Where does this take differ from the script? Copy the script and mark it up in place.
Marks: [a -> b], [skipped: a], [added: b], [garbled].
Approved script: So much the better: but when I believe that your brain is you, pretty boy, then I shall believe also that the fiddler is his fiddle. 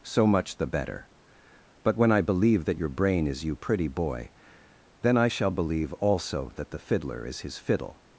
So much the better: but when I believe that your brain is you, pretty boy, then I shall believe also that the fiddler is his fiddle.